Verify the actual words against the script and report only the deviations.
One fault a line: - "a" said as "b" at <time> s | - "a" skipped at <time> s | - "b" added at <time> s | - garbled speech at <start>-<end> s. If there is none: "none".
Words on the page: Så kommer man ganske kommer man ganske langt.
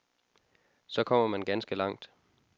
- "kommer man ganske" skipped at 1.8 s